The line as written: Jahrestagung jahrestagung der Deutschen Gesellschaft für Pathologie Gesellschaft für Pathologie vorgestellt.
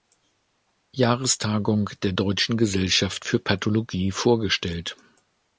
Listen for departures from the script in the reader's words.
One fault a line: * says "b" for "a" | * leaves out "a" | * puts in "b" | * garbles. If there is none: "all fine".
* leaves out "jahrestagung"
* leaves out "Gesellschaft für Pathologie"